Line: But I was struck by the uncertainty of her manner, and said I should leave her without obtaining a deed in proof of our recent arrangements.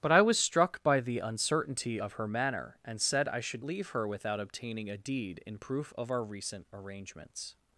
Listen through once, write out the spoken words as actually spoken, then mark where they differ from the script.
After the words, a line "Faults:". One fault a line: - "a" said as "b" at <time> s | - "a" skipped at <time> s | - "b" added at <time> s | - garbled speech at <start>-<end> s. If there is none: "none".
But I was struck by the uncertainty of her manner, and said I should leave her without obtaining a deed in proof of our recent arrangements.
Faults:
none